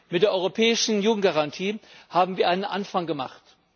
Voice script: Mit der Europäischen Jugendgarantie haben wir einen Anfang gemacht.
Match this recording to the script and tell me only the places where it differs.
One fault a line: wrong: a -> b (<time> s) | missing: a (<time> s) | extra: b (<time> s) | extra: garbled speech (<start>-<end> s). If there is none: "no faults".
no faults